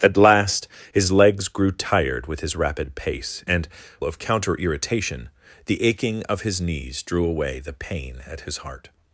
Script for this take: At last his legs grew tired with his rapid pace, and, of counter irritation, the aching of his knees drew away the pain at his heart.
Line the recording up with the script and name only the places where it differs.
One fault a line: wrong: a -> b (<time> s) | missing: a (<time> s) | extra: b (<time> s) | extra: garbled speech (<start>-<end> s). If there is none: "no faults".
no faults